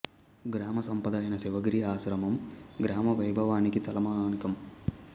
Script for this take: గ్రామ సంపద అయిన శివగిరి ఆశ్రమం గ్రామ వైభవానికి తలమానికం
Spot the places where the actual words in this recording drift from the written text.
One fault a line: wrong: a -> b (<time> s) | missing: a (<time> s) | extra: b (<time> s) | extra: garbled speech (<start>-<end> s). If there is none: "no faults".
no faults